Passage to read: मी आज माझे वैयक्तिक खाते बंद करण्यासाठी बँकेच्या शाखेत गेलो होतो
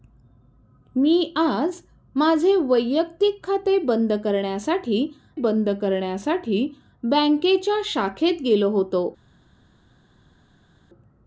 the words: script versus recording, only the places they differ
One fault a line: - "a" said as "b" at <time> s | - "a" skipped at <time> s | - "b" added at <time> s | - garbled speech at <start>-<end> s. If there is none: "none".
- "बंद करण्यासाठी" added at 5.3 s